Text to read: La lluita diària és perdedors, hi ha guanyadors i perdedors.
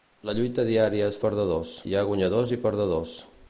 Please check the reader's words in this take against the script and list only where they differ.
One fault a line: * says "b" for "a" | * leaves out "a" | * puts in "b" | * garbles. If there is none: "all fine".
all fine